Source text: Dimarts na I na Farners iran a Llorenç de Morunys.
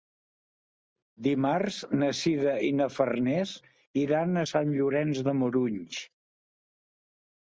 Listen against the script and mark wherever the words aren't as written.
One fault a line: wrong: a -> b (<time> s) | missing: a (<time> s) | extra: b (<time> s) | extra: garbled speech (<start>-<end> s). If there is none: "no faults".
extra: Sira (2.2 s)
extra: Sant (4.5 s)